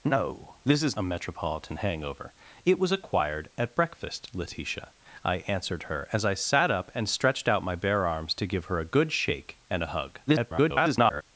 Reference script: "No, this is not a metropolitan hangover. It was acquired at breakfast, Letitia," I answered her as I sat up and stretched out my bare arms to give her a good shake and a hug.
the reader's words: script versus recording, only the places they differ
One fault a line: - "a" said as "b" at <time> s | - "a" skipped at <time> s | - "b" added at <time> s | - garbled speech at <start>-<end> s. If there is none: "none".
- "not" skipped at 1.0 s
- garbled speech at 10.3-11.2 s